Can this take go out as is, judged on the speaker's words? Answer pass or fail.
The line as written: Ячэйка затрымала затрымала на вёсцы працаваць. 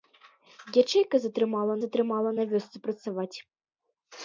pass